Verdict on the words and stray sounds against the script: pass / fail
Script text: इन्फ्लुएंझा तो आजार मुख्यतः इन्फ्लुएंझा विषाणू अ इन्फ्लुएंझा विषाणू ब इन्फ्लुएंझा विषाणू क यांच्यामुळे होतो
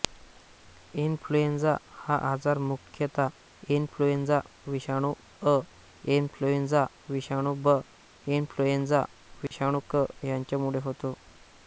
fail